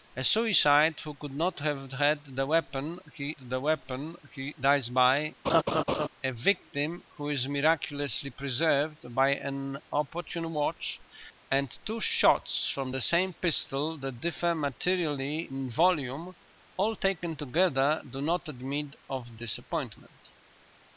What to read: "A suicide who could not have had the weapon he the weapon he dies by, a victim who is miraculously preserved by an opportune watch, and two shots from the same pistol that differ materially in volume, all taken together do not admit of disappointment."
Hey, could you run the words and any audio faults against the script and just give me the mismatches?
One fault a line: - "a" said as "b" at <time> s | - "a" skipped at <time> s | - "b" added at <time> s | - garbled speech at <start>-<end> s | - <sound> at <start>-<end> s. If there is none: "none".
- laugh at 5.4-6.1 s